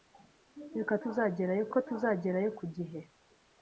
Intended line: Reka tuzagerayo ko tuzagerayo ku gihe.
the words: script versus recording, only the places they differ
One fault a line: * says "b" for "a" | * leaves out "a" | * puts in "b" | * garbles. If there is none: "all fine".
all fine